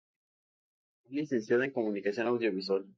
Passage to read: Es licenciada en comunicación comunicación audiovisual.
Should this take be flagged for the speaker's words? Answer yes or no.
yes